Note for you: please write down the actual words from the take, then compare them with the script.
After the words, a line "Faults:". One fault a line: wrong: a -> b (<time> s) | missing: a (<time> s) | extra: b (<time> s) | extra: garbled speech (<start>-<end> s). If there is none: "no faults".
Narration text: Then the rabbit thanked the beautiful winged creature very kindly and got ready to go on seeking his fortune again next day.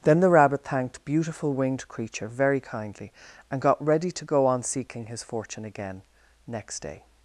Then the rabbit thanked beautiful winged creature very kindly and got ready to go on seeking his fortune again next day.
Faults:
missing: the (1.1 s)